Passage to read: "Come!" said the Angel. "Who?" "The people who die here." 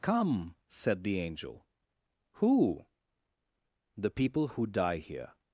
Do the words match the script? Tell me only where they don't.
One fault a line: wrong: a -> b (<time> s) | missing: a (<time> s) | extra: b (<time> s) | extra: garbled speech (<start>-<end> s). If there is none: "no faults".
no faults